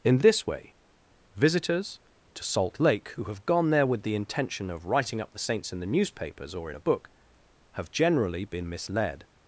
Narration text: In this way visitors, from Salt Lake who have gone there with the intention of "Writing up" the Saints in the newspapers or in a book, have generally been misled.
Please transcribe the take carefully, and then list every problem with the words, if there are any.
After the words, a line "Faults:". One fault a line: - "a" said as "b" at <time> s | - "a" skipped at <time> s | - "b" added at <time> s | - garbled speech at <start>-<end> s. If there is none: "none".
In this way visitors, to Salt Lake who have gone there with the intention of "Writing up" the Saints in the newspapers or in a book, have generally been misled.
Faults:
- "from" said as "to" at 2.3 s